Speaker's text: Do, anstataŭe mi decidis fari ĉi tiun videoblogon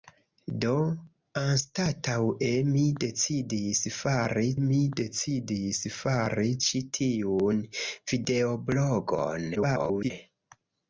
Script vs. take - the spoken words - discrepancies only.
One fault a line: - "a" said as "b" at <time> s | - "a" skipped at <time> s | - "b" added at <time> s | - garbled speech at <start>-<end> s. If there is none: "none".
- "mi decidis fari" added at 4.6 s
- garbled speech at 9.5-10.1 s